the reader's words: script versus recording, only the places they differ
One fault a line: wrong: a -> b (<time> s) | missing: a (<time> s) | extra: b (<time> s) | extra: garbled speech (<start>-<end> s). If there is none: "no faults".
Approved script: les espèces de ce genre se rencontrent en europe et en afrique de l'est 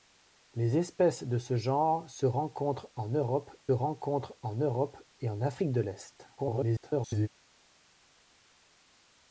extra: rencontrent en europe (3.7 s)
extra: garbled speech (6.4-7.3 s)